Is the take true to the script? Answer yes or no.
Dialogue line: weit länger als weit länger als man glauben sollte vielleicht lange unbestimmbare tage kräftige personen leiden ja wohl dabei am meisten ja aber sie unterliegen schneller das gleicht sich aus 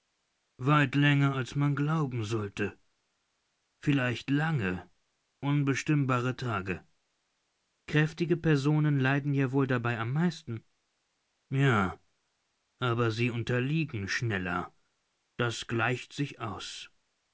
no